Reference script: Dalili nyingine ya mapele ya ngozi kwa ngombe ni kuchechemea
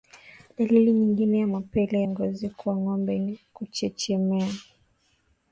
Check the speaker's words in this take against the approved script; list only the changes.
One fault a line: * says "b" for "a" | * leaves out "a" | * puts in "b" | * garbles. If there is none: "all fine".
* leaves out "ya"